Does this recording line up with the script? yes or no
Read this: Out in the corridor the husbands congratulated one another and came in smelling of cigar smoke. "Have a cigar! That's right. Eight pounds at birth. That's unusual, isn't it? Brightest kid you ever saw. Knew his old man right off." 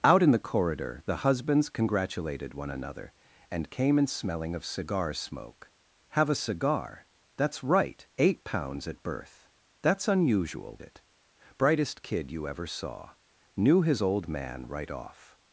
no